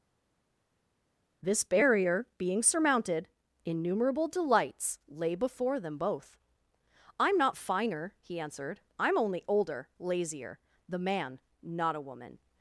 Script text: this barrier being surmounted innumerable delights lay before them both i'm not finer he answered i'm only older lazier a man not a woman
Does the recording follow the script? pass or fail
fail